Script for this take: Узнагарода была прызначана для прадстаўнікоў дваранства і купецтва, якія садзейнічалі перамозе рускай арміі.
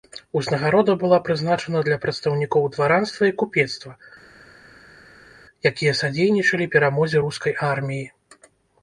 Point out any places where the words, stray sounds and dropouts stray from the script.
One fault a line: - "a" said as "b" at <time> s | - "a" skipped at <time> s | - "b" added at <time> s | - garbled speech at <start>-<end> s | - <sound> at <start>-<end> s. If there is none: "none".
none